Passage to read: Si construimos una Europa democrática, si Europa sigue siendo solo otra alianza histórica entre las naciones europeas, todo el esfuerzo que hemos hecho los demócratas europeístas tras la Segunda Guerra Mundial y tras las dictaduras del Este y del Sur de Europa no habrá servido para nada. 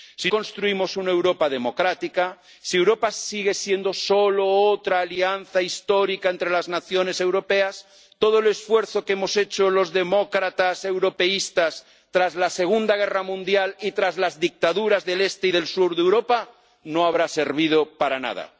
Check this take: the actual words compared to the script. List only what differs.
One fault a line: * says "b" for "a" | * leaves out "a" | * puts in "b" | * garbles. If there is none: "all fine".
all fine